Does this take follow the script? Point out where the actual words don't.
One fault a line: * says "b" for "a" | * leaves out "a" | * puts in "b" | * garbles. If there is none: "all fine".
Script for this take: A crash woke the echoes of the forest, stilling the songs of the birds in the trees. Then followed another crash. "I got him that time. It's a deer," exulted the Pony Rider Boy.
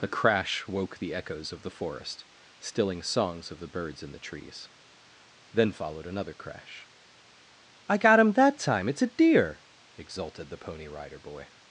* leaves out "the"